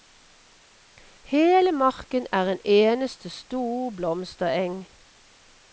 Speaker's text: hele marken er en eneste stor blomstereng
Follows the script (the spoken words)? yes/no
yes